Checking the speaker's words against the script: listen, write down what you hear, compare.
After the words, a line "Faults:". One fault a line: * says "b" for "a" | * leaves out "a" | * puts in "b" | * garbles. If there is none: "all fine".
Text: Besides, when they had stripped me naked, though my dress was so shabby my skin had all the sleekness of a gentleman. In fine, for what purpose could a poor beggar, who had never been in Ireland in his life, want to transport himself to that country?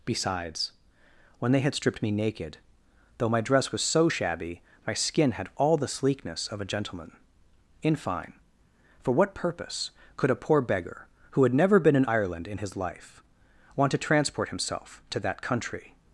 Besides, when they had stripped me naked, though my dress was so shabby my skin had all the sleekness of a gentleman. In fine, for what purpose could a poor beggar, who had never been in Ireland in his life, want to transport himself to that country?
Faults:
all fine